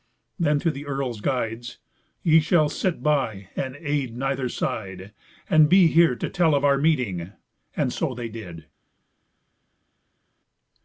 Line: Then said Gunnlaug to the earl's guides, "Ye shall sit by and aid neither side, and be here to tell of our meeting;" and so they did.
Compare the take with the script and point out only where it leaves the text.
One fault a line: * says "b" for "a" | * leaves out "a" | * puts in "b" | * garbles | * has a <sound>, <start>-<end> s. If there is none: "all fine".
* leaves out "said Gunnlaug"